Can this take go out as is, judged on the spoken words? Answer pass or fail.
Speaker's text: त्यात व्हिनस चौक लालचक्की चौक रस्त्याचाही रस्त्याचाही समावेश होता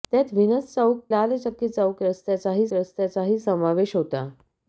pass